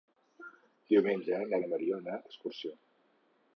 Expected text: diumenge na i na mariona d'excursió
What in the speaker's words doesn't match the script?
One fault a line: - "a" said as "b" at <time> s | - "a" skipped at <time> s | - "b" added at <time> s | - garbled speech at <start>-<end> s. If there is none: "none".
none